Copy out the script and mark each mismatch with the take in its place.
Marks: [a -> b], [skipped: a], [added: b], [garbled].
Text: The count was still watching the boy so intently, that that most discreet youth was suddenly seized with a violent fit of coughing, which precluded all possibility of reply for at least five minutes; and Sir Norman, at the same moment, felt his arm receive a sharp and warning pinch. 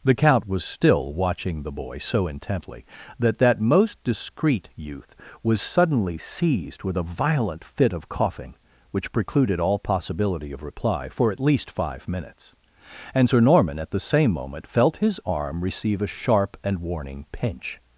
The count was still watching the boy so intently, that that most discreet youth was suddenly seized with a violent fit of coughing, which precluded all possibility of reply for at least five minutes; and Sir Norman, at the same moment, felt his arm receive a sharp and warning pinch.